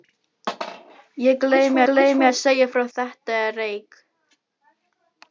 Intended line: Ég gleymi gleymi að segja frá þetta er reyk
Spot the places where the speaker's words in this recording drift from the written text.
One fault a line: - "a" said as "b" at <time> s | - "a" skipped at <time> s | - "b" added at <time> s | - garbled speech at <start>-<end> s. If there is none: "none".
none